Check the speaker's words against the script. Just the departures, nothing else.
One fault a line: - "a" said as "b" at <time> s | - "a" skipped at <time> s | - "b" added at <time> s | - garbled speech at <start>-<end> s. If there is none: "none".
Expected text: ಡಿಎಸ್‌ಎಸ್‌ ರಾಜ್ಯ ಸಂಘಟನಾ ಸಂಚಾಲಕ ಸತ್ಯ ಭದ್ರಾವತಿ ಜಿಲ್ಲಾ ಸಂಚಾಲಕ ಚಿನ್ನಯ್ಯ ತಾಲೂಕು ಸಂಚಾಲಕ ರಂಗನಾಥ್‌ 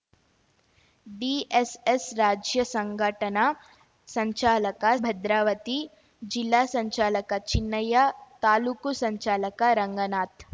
- "ಸತ್ಯ" skipped at 4.8 s